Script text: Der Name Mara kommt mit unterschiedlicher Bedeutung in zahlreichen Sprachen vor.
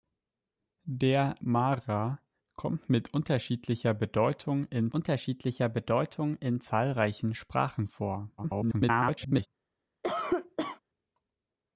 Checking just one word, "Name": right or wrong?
wrong